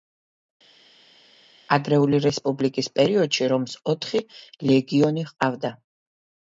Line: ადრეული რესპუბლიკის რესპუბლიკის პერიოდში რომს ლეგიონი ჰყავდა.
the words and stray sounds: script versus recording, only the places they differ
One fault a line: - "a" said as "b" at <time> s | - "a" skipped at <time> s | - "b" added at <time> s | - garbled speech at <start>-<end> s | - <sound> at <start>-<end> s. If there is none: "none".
- "რესპუბლიკის" skipped at 2.9 s
- "ოთხი" added at 4.0 s